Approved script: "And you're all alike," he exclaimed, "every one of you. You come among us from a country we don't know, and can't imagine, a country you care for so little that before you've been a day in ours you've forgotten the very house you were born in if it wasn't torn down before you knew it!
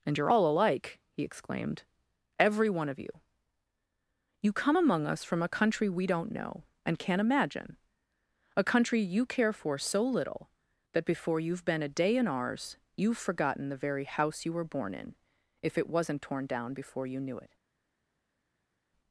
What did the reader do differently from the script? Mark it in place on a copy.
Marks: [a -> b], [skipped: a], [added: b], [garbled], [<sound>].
"And you're all alike," he exclaimed, "every one of you. You come among us from a country we don't know, and can't imagine, a country you care for so little that before you've been a day in ours you've forgotten the very house you were born in if it wasn't torn down before you knew it!